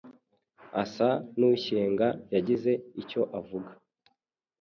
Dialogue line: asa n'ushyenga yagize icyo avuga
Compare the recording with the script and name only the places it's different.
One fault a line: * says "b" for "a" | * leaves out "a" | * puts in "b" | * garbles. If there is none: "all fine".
all fine